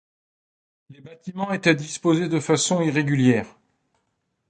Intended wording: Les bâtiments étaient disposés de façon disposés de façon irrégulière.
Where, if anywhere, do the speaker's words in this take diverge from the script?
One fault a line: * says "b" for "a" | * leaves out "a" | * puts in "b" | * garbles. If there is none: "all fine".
* leaves out "disposés de façon"